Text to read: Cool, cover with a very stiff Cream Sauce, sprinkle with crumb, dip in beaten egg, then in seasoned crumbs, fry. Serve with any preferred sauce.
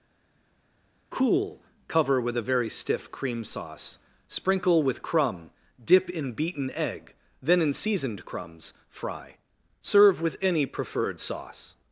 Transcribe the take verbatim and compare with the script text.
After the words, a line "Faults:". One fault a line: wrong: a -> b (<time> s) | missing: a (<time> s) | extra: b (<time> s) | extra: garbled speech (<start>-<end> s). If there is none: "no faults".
Cool, cover with a very stiff Cream Sauce, sprinkle with crumb, dip in beaten egg, then in seasoned crumbs, fry. Serve with any preferred sauce.
Faults:
no faults